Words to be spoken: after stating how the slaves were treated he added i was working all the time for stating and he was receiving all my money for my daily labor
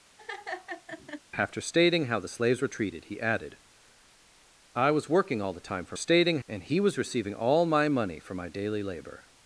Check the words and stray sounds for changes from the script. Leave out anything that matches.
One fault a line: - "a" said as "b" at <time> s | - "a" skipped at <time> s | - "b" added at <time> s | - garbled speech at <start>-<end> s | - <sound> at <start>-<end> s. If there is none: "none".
- laugh at 0.2-1.2 s